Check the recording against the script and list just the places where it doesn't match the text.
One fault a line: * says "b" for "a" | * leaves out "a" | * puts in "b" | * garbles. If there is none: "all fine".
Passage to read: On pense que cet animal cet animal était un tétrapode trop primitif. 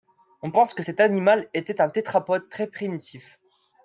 * leaves out "cet animal"
* says "très" for "trop"